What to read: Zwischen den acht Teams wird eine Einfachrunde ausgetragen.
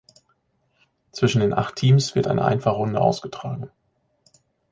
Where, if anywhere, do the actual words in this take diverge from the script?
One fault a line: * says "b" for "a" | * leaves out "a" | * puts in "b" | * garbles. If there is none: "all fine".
all fine